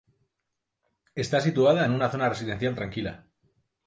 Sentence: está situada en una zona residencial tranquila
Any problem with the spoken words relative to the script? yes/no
no